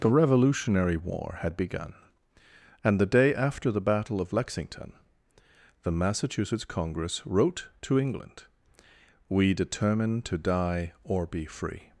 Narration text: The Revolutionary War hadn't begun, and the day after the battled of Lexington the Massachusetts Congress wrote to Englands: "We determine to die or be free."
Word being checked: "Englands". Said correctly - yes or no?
no